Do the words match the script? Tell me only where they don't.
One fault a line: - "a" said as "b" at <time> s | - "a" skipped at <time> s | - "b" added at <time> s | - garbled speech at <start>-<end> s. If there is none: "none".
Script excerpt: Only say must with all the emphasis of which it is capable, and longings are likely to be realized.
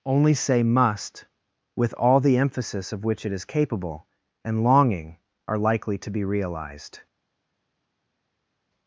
- "longings" said as "longing" at 4.6 s